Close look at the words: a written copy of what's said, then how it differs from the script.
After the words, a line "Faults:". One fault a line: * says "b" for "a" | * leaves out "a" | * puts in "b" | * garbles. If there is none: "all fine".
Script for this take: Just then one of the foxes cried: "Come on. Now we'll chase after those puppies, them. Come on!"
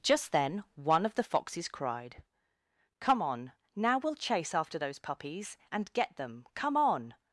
Just then one of the foxes cried: "Come on. Now we'll chase after those puppies, and get them. Come on!"
Faults:
* puts in "and get"